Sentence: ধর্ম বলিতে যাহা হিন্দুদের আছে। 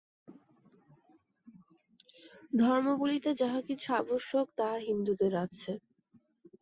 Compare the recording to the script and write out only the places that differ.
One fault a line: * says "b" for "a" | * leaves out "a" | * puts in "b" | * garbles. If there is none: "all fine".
* puts in "কিছু আবশ্যক তাহা"